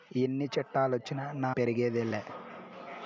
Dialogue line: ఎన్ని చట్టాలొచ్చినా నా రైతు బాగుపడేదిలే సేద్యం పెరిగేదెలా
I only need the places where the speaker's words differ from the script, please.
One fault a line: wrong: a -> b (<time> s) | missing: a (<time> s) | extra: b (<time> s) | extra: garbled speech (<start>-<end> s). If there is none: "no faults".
missing: రైతు బాగుపడేదిలే సేద్యం (1.5 s)